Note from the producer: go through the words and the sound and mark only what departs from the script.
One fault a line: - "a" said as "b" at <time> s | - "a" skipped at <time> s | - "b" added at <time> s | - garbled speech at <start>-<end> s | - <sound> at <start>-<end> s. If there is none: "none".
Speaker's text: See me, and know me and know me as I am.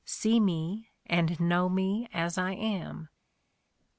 - "and know me" skipped at 2.1 s